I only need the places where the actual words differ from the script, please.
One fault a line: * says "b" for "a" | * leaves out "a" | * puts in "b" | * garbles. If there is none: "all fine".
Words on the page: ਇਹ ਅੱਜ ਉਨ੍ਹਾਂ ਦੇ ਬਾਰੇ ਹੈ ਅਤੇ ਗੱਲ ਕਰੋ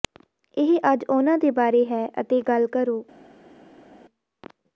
all fine